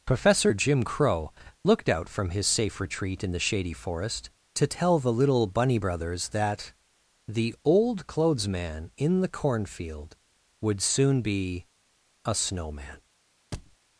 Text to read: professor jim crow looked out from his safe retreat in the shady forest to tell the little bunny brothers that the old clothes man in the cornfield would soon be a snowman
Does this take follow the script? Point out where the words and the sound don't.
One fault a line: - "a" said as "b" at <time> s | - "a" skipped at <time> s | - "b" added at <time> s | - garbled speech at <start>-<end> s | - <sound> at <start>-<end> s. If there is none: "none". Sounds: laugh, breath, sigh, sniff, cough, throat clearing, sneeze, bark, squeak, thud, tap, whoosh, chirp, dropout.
- thud at 13.5-13.8 s